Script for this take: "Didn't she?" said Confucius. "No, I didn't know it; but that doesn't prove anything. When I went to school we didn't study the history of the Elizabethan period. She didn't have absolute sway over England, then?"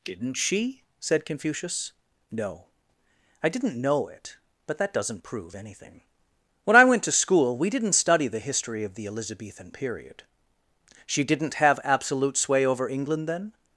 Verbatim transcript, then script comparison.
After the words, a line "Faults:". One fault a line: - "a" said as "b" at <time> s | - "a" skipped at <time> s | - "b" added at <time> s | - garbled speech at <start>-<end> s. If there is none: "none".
"Didn't she?" said Confucius. "No, I didn't know it; but that doesn't prove anything. When I went to school we didn't study the history of the Elizabethan period. She didn't have absolute sway over England, then?"
Faults:
none